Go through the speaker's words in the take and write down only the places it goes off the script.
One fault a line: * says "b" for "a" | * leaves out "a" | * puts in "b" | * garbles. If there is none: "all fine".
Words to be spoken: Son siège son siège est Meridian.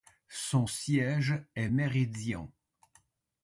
* leaves out "son siège"